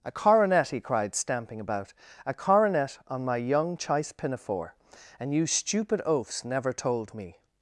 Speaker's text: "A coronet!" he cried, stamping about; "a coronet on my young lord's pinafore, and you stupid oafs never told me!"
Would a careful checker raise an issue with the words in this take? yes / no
yes